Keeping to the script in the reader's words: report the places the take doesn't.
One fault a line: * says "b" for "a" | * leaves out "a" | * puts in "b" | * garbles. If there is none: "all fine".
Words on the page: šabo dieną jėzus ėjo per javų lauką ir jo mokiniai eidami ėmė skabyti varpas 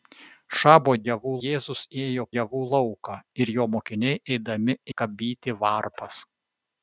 * says "javų" for "dieną"
* leaves out "per"
* leaves out "ėmė"